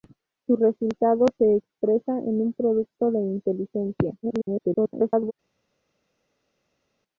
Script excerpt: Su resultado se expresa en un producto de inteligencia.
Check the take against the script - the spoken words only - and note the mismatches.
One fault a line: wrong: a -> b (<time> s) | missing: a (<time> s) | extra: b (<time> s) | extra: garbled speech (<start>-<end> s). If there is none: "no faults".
extra: garbled speech (4.2-5.3 s)